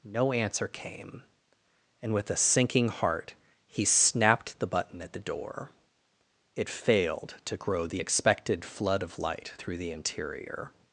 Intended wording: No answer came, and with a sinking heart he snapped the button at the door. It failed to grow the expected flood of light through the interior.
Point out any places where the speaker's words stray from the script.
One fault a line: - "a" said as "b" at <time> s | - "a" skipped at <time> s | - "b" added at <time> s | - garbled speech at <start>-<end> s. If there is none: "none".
none